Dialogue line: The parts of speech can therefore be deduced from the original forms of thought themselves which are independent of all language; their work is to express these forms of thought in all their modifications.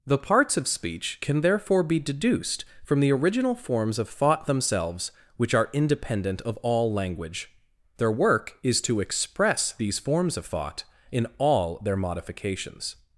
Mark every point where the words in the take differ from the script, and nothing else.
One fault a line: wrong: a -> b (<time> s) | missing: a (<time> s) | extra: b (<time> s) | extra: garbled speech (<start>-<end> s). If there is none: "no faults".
no faults